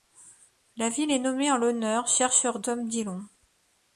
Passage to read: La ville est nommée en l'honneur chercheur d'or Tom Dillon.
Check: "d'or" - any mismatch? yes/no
yes